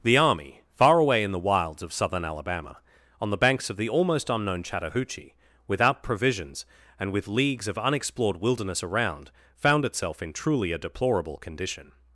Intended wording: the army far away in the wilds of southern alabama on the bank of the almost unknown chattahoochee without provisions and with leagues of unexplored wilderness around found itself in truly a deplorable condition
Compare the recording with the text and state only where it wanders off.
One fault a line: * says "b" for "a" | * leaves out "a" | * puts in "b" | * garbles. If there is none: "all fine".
* says "banks" for "bank"